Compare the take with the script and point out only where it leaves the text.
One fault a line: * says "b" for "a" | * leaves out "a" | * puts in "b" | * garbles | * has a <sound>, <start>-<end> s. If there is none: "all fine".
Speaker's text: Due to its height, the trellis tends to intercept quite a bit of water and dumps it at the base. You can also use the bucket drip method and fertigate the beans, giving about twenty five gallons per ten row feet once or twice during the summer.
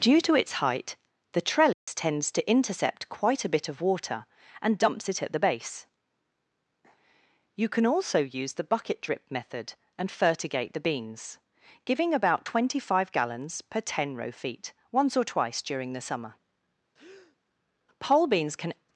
* has a dropout, 1.7-1.9 s
* has a breath, 16.9-17.4 s
* puts in "Pole beans can"